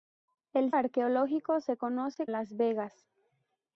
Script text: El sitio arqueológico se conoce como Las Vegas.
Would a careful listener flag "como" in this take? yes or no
yes